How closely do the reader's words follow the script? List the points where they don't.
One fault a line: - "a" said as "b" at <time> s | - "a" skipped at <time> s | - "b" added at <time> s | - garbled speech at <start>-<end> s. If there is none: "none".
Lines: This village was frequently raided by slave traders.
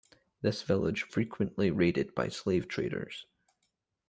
- "was" skipped at 1.1 s